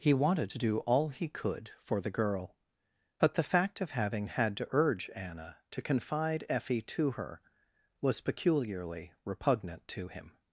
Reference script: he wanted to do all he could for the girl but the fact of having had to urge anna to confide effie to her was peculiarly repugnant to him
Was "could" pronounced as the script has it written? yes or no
yes